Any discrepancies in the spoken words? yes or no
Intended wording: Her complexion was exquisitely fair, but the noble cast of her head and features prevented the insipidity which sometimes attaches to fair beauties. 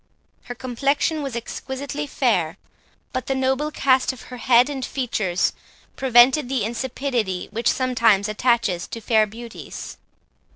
no